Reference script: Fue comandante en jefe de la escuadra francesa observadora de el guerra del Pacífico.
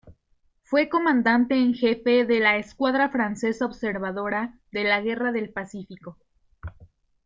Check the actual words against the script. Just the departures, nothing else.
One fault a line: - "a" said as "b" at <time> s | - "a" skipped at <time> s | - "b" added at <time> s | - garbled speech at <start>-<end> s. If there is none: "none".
- "el" said as "la" at 4.8 s